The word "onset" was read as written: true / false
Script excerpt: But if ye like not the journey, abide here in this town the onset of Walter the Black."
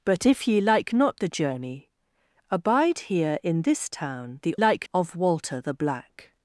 false